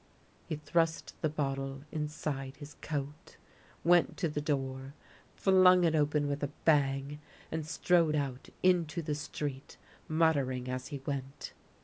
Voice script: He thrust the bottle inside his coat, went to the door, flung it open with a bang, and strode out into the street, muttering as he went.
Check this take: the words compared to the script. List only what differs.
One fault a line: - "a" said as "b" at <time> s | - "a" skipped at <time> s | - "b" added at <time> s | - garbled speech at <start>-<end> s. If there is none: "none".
none